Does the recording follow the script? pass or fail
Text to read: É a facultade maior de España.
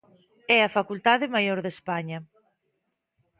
pass